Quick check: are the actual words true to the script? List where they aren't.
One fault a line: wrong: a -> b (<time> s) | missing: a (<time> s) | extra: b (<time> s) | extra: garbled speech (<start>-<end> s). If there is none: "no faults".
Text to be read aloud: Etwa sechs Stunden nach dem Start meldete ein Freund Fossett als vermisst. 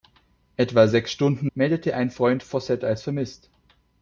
missing: nach dem Start (1.5 s)